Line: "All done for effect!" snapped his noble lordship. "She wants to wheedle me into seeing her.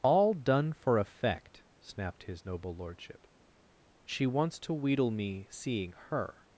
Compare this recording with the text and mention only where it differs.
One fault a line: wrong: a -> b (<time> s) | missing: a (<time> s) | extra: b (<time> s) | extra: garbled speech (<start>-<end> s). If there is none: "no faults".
missing: into (5.5 s)